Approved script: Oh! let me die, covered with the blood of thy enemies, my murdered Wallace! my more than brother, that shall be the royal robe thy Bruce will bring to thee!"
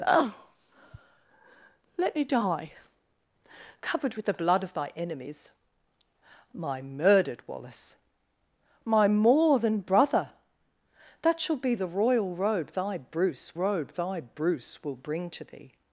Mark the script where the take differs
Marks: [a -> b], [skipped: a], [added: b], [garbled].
Oh! let me die, covered with the blood of thy enemies, my murdered Wallace! my more than brother, that shall be the royal robe thy Bruce [added: robe thy Bruce] will bring to thee!"